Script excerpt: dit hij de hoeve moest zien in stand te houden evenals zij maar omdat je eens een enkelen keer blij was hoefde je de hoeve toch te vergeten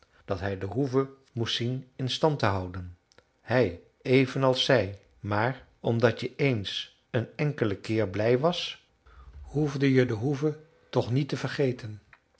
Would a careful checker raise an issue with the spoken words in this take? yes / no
yes